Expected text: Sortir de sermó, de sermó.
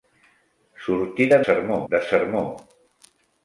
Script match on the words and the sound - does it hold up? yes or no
yes